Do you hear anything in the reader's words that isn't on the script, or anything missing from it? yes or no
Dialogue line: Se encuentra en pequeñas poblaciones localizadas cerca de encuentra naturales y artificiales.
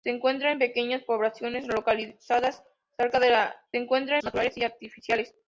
no